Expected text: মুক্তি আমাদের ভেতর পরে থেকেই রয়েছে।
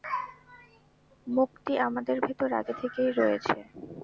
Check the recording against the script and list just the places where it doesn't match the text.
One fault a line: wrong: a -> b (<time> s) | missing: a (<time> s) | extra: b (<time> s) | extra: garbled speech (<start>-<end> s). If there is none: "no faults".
wrong: পরে -> আগে (2.5 s)